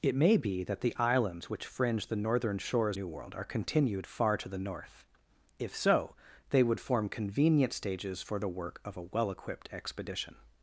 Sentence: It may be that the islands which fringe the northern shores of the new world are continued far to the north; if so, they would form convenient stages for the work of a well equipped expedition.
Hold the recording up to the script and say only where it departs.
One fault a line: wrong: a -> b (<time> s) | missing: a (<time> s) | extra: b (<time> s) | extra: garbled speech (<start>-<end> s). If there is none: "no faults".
missing: of the (3.0 s)